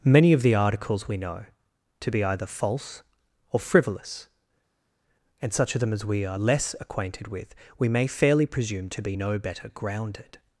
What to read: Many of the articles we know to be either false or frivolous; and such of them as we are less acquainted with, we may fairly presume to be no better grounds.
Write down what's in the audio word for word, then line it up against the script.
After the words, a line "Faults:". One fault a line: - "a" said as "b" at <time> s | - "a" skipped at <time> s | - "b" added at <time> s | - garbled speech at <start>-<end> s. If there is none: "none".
Many of the articles we know to be either false or frivolous; and such of them as we are less acquainted with, we may fairly presume to be no better grounded.
Faults:
- "grounds" said as "grounded" at 9.7 s